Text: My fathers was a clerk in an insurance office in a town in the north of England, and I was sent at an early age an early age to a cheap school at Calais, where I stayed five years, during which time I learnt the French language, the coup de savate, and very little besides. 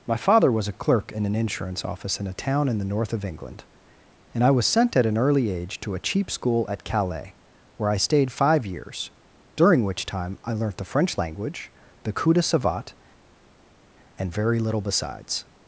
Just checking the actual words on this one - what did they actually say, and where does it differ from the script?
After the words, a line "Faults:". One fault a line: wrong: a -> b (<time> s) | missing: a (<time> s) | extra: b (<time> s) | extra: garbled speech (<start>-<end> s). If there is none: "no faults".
My father was a clerk in an insurance office in a town in the north of England, and I was sent at an early age to a cheap school at Calais, where I stayed five years, during which time I learnt the French language, the coup de savate, and very little besides.
Faults:
wrong: fathers -> father (0.2 s)
missing: an early age (5.8 s)